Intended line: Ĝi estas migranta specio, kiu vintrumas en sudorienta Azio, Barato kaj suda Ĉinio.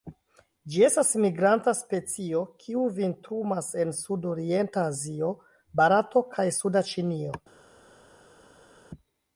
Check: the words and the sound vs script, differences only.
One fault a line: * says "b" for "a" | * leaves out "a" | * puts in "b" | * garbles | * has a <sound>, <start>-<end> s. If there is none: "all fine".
all fine